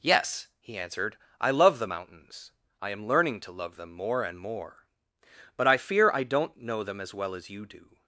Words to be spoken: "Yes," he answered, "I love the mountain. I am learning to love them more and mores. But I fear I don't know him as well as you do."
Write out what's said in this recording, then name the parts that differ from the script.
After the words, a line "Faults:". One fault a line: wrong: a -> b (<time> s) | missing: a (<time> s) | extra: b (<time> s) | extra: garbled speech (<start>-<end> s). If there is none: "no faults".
"Yes," he answered, "I love the mountains. I am learning to love them more and more. But I fear I don't know them as well as you do."
Faults:
wrong: mountain -> mountains (1.8 s)
wrong: mores -> more (4.4 s)
wrong: him -> them (6.8 s)